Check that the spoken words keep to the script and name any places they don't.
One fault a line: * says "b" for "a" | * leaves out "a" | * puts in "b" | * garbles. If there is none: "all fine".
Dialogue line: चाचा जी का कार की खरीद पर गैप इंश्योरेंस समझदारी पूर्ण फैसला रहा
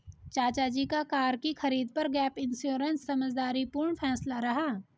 all fine